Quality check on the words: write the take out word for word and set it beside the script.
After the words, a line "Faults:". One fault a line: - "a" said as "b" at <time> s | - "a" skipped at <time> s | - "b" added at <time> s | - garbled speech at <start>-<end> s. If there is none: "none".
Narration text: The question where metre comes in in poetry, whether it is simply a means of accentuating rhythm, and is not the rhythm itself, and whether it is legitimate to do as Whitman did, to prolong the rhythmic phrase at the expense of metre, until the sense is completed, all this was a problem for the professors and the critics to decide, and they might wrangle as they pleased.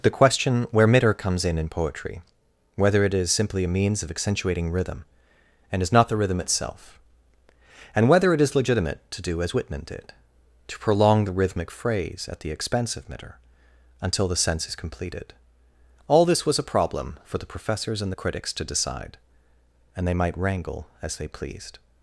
The question where metre comes in in poetry, whether it is simply a means of accentuating rhythm, and is not the rhythm itself, and whether it is legitimate to do as Whitman did, to prolong the rhythmic phrase at the expense of metre, until the sense is completed, all this was a problem for the professors and the critics to decide, and they might wrangle as they pleased.
Faults:
none